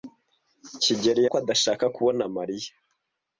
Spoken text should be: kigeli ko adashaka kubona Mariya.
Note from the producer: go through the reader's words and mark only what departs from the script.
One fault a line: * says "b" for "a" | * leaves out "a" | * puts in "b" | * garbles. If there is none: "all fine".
all fine